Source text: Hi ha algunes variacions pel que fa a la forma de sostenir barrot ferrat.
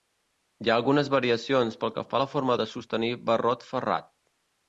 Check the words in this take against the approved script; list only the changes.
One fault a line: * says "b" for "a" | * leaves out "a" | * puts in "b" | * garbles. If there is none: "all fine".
all fine